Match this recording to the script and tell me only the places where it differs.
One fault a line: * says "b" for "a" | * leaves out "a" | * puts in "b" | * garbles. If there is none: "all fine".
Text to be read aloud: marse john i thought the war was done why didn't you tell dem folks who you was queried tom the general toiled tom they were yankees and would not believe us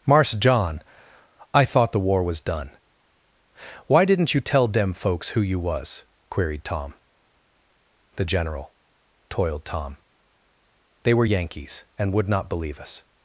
all fine